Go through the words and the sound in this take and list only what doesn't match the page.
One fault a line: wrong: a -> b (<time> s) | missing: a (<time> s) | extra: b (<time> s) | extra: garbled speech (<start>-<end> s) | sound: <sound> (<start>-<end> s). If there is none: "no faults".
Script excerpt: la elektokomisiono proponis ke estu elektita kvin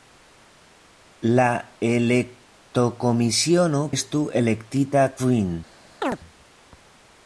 missing: proponis ke (3.8 s)
sound: chirp (6.0-6.2 s)